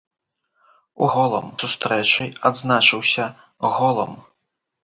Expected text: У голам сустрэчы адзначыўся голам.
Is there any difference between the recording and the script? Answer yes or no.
no